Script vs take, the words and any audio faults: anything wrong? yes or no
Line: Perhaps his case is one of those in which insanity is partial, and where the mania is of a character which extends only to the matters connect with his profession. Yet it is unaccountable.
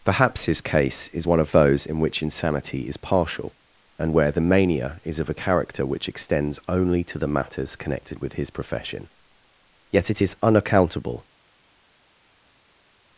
yes